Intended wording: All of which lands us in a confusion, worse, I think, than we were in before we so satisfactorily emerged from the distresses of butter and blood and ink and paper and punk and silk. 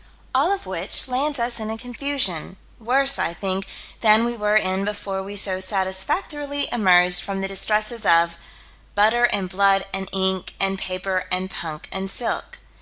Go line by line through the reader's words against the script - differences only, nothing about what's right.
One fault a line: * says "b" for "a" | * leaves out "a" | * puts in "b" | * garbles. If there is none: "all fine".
all fine